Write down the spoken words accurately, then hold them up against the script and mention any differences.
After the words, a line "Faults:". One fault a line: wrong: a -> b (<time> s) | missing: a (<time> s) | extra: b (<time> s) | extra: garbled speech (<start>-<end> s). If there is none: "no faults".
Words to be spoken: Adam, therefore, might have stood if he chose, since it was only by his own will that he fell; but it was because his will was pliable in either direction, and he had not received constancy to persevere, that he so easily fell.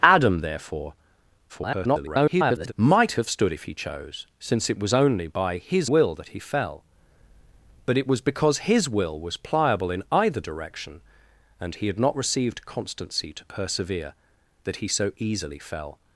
Adam, therefore, [garbled] might have stood if he chose, since it was only by his will that he fell; but it was because his will was pliable in either direction, and he had not received constancy to persevere, that he so easily fell.
Faults:
extra: garbled speech (1.5-2.7 s)
missing: own (5.9 s)